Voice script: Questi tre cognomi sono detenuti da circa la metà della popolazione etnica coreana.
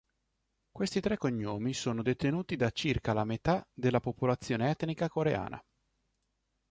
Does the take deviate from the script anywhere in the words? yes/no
no